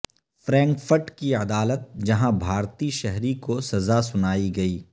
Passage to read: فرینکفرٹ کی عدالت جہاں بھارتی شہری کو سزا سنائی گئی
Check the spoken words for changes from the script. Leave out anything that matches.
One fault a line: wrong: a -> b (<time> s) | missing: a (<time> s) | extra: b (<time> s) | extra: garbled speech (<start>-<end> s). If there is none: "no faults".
no faults